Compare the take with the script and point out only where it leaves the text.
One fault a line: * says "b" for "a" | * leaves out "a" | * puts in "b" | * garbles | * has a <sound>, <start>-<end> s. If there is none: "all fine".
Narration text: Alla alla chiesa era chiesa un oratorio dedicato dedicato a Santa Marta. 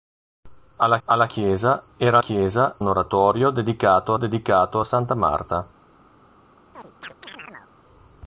* has a chirp, 6.7-7.7 s